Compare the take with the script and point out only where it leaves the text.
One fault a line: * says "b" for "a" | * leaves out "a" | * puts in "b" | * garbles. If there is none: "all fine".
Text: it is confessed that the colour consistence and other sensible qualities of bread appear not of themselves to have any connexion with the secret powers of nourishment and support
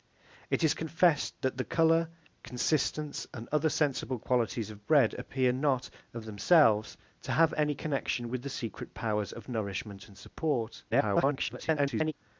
* garbles